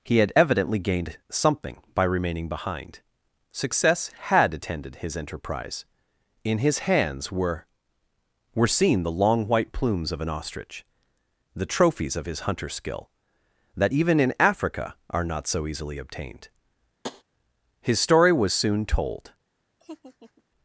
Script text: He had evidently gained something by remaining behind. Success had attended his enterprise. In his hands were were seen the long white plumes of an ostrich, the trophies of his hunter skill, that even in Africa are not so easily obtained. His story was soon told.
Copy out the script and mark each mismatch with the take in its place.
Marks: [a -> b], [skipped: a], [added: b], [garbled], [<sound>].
He had evidently gained something by remaining behind. Success had attended his enterprise. In his hands were were seen the long white plumes of an ostrich, the trophies of his hunter skill, that even in Africa are not so easily obtained. [tap] His story was soon told. [laugh]